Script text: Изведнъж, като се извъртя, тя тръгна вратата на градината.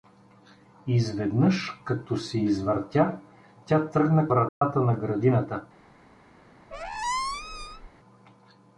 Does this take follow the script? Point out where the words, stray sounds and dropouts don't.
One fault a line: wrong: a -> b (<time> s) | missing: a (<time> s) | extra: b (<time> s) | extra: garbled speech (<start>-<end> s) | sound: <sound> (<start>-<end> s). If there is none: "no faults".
sound: dropout (4.5-4.6 s)
sound: squeak (6.7-7.9 s)